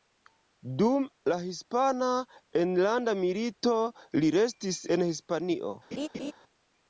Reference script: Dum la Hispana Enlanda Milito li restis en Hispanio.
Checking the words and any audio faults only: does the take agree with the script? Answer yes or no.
no